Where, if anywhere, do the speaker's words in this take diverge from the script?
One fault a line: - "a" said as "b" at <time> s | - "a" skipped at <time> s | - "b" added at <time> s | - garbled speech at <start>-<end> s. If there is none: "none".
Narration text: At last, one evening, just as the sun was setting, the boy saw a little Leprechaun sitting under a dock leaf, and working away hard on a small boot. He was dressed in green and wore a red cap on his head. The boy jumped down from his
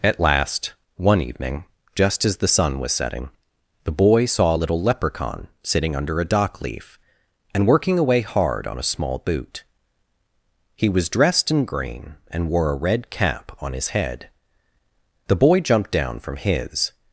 none